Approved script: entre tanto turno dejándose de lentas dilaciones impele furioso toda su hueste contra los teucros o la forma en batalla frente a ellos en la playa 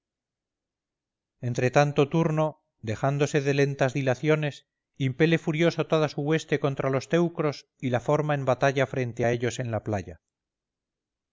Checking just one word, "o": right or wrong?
wrong